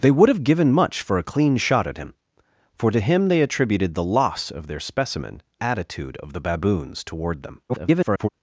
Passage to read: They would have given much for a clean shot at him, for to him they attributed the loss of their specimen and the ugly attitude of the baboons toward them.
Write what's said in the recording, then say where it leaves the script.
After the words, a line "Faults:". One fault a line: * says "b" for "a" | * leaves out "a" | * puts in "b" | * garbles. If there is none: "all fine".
They would have given much for a clean shot at him, for to him they attributed the loss of their specimen attitude of the baboons toward them. [garbled]
Faults:
* leaves out "and the ugly"
* garbles